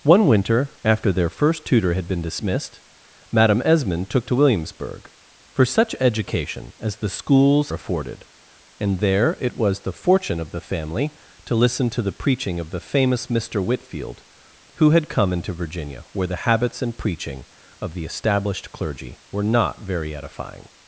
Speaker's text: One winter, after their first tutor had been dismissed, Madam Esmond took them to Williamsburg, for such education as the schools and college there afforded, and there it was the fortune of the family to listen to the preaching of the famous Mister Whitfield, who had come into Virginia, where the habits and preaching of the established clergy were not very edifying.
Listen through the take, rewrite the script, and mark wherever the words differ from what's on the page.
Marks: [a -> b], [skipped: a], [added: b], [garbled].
One winter, after their first tutor had been dismissed, Madam Esmond took [skipped: them] to Williamsburg, for such education as the schools [skipped: and college there] afforded, and there it was the fortune of the family to listen to the preaching of the famous Mister Whitfield, who had come into Virginia, where the habits and preaching of the established clergy were not very edifying.